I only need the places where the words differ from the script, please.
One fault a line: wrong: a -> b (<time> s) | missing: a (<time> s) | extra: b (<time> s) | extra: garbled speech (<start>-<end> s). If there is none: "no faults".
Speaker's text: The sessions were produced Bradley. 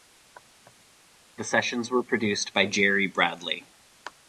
extra: by Jerry (2.5 s)